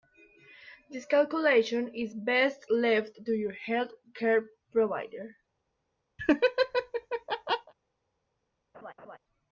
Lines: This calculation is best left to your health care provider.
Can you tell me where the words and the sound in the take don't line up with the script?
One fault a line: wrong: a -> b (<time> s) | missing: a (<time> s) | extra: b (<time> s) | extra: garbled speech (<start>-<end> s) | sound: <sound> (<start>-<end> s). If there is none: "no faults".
sound: laugh (6.2-7.7 s)
sound: laugh (8.7-9.2 s)